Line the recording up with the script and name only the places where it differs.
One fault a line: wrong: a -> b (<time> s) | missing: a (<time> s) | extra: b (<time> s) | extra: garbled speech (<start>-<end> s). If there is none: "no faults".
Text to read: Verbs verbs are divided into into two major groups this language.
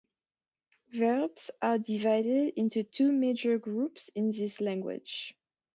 missing: verbs (1.5 s)
missing: into (2.8 s)
extra: in (4.1 s)